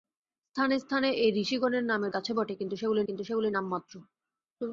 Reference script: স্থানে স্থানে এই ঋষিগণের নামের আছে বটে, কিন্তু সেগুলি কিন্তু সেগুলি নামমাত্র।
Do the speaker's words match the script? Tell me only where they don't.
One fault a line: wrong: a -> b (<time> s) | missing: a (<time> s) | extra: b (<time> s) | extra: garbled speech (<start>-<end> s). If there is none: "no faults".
no faults